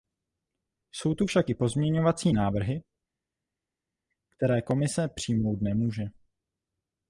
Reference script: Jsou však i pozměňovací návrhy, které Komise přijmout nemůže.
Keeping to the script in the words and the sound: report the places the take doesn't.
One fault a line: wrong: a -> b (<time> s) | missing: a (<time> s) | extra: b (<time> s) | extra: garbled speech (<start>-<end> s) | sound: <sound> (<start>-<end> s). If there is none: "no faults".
extra: tu (1.1 s)